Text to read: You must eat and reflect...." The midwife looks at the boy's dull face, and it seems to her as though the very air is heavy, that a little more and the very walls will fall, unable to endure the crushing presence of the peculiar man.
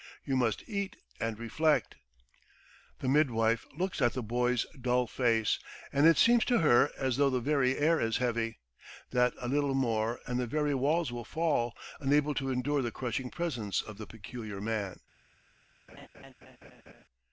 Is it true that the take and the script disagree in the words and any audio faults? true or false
true